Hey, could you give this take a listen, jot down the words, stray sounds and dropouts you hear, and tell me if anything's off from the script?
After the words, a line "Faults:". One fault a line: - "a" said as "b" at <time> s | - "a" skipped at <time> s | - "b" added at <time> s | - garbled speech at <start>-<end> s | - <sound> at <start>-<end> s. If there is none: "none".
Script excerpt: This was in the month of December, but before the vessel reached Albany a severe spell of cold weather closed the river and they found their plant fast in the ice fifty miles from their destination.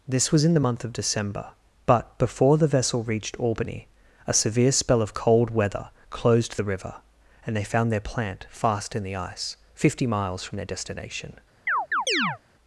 This was in the month of December, but before the vessel reached Albany a severe spell of cold weather closed the river and they found their plant fast in the ice fifty miles from their destination.
Faults:
- chirp at 11.7-12.4 s